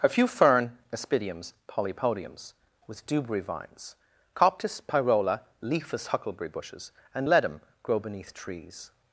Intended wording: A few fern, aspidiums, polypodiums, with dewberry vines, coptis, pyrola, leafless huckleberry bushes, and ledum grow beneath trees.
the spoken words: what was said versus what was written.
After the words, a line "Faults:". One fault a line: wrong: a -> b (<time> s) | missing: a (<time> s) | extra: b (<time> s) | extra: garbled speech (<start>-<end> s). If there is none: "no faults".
A few fern, aspidiums, polypodiums, with dewberry vines, coptis, pyrola, leafless huckleberry bushes, and ledum grow beneath trees.
Faults:
no faults